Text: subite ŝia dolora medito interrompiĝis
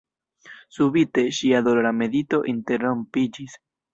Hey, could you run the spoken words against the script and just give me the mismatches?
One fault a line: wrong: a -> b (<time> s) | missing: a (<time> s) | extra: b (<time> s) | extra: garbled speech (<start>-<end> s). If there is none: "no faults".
no faults